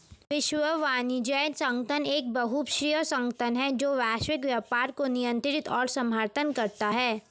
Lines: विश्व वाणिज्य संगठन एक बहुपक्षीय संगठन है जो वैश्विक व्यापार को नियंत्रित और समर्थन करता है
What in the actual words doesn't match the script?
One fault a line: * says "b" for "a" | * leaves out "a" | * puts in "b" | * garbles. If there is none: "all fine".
all fine